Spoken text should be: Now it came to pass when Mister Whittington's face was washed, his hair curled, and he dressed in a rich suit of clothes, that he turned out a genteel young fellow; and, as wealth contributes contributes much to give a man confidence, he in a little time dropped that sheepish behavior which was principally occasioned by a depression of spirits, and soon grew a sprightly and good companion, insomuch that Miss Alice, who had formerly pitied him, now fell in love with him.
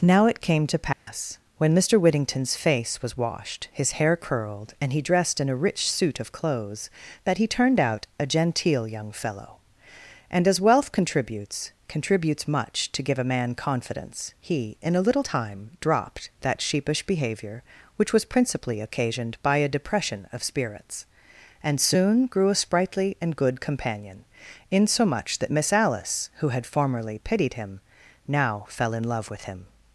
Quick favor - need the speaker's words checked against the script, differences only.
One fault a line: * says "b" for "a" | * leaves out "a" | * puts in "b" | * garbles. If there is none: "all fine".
all fine